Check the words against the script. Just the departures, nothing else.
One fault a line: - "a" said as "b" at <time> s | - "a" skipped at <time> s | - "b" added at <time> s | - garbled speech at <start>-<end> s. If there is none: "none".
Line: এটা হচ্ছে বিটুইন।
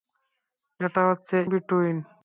none